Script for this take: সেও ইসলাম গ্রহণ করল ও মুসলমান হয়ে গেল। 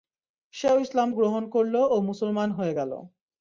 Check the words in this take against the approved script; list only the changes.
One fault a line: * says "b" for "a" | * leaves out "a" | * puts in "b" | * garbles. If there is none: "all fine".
all fine